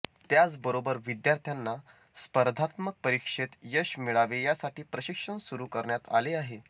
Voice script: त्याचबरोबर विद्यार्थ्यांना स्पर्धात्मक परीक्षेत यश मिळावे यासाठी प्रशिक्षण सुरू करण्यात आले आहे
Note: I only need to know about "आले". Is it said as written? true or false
true